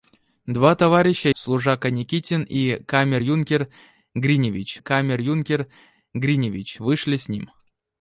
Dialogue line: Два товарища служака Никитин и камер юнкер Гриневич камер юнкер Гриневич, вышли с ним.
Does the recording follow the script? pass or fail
pass